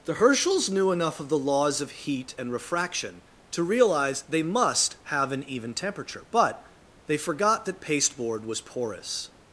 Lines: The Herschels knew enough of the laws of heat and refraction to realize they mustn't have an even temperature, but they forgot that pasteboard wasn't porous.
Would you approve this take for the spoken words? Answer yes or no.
no